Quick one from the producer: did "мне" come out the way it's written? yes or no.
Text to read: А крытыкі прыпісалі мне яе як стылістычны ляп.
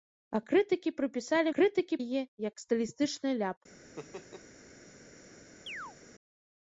no